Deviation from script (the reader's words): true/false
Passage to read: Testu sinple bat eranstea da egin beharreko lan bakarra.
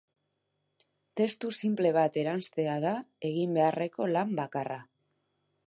false